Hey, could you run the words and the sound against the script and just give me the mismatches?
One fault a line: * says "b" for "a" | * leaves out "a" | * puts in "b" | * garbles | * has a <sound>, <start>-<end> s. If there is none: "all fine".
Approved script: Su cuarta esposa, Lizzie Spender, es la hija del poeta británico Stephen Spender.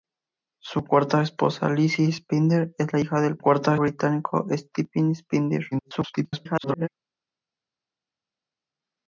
* says "cuarta" for "poeta"
* garbles